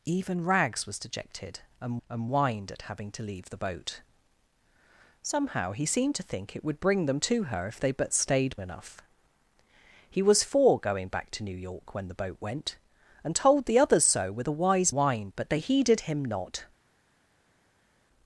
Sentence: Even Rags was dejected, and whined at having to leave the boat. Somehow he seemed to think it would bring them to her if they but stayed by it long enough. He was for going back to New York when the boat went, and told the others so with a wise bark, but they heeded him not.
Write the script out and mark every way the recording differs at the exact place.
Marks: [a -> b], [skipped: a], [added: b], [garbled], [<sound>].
Even Rags was dejected, and [added: and] whined at having to leave the boat. Somehow he seemed to think it would bring them to her if they but stayed [skipped: by it long] enough. He was for going back to New York when the boat went, and told the others so with a wise [bark, -> whined] but they heeded him not.